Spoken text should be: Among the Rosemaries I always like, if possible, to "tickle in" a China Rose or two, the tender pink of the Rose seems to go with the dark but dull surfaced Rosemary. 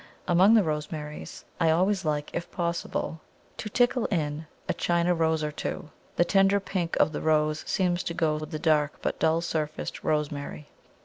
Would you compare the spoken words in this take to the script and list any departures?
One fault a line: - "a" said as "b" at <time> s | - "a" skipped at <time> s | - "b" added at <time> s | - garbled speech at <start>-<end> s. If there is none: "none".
none